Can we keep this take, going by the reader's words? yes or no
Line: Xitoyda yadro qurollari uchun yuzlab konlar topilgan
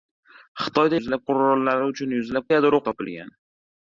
no